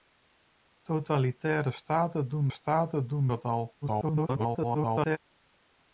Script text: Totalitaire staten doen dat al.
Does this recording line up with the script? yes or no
no